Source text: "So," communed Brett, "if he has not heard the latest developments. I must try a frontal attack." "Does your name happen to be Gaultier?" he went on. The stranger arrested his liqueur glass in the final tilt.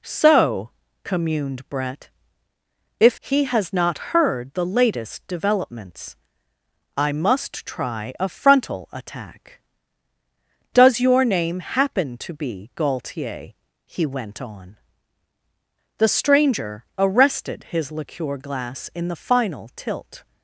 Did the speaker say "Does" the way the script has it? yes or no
yes